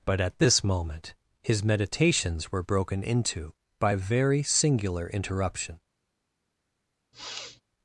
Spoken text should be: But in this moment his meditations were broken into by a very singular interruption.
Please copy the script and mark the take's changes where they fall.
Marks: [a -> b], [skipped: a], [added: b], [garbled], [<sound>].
But [in -> at] this moment his meditations were broken into by a very singular interruption. [sniff]